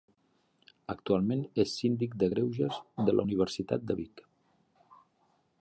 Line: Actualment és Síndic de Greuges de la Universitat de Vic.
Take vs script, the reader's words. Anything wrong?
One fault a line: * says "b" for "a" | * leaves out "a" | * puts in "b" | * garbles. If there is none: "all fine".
all fine